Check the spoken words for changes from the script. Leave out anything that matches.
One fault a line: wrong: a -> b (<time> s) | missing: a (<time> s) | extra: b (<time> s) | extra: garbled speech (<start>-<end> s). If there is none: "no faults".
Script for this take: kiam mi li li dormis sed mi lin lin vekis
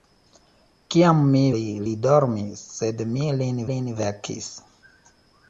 no faults